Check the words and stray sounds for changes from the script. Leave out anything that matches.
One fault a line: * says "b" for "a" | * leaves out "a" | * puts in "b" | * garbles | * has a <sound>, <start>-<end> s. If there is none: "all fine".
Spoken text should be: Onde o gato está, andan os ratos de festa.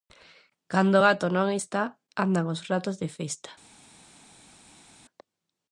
* says "Cando" for "Onde"
* puts in "non"